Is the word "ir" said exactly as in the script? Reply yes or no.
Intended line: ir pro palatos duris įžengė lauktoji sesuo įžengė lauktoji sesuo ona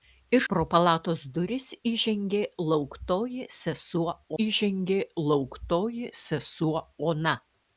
yes